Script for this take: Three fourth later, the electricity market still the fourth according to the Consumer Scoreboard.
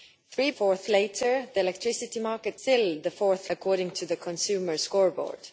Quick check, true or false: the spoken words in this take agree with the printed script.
true